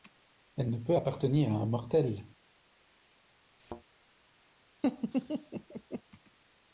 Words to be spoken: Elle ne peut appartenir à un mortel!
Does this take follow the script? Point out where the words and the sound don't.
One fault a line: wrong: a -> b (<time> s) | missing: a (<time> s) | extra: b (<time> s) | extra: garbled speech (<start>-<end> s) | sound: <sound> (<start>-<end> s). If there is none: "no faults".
sound: thud (3.6-3.8 s)
sound: laugh (4.8-6.0 s)